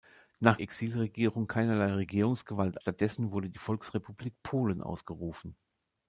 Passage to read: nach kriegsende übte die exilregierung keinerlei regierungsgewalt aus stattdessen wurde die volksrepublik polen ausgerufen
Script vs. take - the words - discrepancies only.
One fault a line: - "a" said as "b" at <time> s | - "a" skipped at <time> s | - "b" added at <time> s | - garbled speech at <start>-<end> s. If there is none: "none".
- "kriegsende übte die" skipped at 0.6 s
- "aus" skipped at 2.8 s